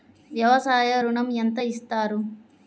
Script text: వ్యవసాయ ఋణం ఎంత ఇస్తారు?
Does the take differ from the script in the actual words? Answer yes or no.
no